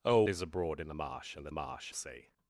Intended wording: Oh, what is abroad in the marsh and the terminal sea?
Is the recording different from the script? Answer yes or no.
yes